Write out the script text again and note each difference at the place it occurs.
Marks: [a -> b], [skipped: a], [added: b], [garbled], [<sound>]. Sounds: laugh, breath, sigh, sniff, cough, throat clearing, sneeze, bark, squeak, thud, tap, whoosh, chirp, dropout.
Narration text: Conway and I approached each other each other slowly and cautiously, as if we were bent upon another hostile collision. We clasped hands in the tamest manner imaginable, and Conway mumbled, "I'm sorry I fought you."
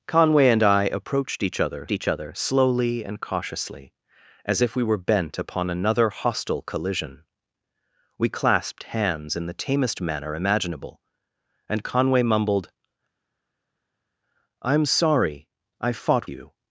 Conway and I approached each other each other slowly and cautiously, as if we were bent upon another hostile collision. We clasped hands in the tamest manner imaginable, and Conway mumbled, "I'm sorry I fought you."